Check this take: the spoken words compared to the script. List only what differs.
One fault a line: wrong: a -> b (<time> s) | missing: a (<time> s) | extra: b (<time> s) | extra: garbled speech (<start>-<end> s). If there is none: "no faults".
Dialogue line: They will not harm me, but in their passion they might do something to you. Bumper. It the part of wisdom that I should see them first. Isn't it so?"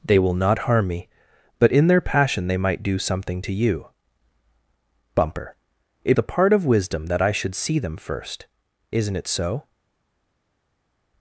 no faults